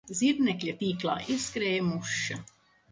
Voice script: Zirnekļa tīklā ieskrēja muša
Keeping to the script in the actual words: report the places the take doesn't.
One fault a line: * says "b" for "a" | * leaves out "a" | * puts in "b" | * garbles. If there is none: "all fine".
all fine